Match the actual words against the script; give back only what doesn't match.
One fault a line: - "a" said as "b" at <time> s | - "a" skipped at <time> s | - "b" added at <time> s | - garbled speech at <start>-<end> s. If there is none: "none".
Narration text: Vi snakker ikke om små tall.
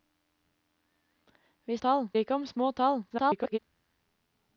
- "snakker" said as "tall" at 1.8 s
- garbled speech at 3.1-3.6 s